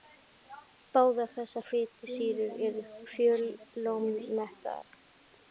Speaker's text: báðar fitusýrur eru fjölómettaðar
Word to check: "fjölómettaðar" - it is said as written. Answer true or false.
true